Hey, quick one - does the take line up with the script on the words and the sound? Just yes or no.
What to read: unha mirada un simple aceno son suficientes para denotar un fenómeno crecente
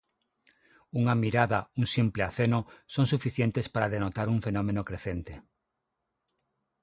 yes